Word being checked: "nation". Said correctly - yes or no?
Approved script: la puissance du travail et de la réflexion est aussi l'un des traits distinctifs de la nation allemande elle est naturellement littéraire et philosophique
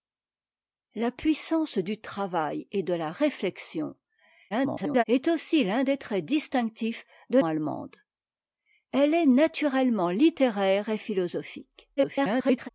no